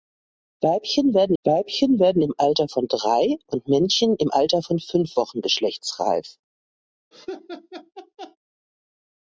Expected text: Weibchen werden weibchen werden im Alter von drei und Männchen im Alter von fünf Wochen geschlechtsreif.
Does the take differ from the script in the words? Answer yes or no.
no